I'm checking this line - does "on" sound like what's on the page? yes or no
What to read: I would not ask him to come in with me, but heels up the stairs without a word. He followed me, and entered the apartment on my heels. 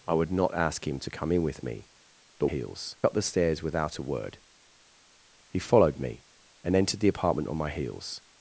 yes